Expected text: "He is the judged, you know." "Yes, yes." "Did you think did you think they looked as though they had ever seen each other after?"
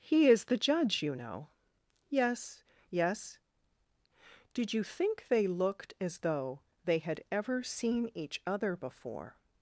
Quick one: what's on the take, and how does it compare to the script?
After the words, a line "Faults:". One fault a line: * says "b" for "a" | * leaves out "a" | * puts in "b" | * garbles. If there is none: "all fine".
"He is the judge, you know." "Yes, yes." "Did you think they looked as though they had ever seen each other before?"
Faults:
* says "judge" for "judged"
* leaves out "did you think"
* says "before" for "after"